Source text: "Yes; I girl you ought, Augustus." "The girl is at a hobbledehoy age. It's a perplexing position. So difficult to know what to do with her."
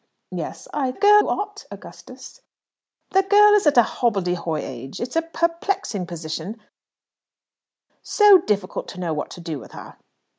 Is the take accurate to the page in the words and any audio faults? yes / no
yes